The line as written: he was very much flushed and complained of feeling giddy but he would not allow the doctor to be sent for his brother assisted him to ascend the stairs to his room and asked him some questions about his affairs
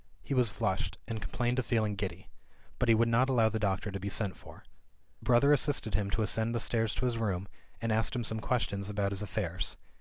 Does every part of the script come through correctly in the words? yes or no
no